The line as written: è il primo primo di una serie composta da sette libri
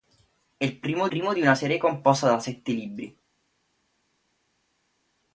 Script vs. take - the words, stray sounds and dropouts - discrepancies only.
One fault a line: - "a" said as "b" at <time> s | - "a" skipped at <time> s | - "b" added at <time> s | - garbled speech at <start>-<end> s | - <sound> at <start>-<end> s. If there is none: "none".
none